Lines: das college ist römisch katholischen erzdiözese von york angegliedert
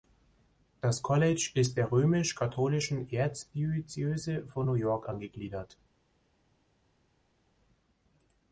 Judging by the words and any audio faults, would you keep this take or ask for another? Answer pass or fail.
fail